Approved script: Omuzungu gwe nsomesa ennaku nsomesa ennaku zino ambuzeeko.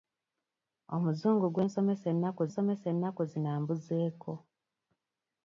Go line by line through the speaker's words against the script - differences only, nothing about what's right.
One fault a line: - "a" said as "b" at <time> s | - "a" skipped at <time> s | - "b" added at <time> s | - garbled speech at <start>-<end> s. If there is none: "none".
none